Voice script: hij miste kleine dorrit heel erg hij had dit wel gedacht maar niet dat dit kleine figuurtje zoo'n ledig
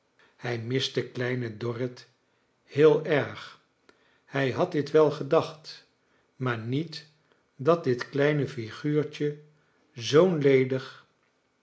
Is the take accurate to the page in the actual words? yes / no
yes